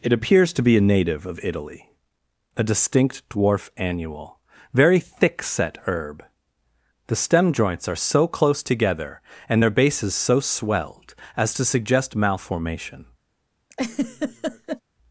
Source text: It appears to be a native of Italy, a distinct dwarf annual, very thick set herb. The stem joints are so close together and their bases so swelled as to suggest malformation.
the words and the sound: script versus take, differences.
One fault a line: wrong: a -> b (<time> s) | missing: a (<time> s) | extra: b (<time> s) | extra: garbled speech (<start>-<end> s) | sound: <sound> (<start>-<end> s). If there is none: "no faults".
sound: laugh (13.7-14.8 s)